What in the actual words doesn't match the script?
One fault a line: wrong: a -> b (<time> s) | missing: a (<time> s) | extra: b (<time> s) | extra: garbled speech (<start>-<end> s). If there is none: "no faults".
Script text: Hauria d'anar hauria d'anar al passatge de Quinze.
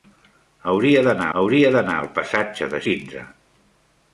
no faults